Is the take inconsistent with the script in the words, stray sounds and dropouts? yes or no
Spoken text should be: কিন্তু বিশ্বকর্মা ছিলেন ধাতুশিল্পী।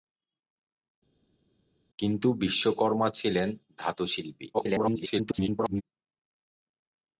yes